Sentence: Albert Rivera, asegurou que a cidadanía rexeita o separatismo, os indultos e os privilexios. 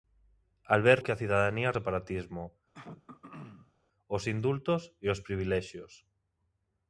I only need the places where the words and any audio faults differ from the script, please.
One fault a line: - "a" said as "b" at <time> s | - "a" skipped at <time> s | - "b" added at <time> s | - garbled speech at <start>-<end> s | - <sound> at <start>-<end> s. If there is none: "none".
- "Rivera asegurou" skipped at 1.0 s
- "rexeita" skipped at 1.8 s
- throat clearing at 2.7-3.7 s